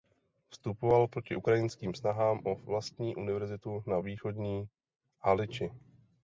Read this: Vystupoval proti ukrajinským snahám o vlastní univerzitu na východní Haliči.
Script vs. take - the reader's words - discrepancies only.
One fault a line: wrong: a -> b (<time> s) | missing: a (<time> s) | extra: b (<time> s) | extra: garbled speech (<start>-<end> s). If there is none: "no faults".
no faults